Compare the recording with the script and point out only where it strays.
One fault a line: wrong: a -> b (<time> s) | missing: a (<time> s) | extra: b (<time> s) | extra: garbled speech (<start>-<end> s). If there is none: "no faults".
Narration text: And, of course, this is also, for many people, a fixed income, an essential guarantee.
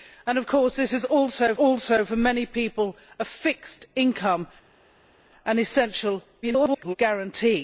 extra: also (1.5 s)
extra: garbled speech (6.4-7.0 s)